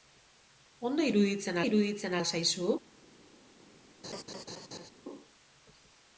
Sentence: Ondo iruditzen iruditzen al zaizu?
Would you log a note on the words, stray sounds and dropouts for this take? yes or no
yes